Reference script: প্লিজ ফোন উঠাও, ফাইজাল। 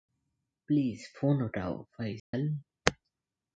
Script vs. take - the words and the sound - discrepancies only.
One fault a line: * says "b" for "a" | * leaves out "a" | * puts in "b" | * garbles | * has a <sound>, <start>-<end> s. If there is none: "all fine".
* has a dropout, 2.2-2.3 s